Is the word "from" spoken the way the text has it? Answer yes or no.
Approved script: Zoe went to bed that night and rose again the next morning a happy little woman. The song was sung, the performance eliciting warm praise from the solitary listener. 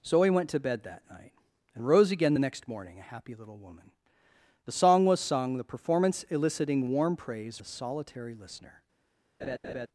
no